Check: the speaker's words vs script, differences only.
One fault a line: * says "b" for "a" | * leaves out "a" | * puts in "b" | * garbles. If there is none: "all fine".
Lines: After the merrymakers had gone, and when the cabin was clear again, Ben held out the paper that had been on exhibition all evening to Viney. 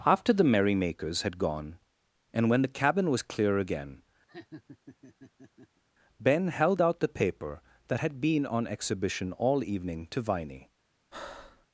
all fine